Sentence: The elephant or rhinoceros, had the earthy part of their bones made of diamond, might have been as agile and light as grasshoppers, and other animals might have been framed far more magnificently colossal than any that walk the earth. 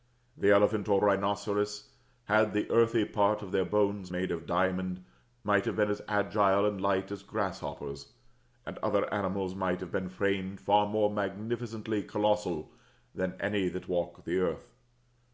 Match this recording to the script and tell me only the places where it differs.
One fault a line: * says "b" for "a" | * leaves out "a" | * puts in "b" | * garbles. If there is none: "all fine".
all fine